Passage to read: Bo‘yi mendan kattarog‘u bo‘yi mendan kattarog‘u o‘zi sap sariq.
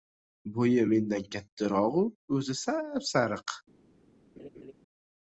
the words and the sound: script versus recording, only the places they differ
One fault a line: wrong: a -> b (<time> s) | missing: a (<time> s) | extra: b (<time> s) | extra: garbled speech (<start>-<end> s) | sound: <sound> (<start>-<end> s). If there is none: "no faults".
missing: bo‘yi mendan kattarog‘u (2.1 s)
sound: laugh (4.4-4.7 s)